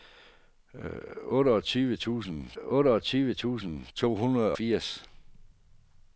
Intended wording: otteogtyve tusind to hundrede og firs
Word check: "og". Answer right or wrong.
wrong